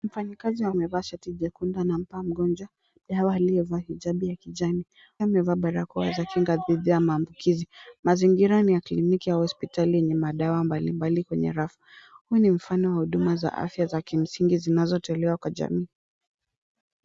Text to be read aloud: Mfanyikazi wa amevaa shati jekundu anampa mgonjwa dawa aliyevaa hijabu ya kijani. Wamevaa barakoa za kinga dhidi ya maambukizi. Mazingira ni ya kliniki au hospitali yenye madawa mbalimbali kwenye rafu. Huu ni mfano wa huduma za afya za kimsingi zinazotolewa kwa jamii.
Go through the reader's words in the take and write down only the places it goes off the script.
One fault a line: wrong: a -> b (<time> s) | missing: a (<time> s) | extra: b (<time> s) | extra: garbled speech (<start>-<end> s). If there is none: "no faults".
no faults